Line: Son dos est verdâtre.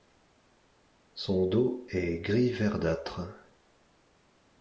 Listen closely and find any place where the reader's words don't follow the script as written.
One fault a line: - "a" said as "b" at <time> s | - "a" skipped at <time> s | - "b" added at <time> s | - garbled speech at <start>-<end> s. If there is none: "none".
- "gris" added at 2.2 s